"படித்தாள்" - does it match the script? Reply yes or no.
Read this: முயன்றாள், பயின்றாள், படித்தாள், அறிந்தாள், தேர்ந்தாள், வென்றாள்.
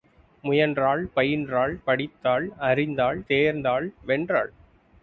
yes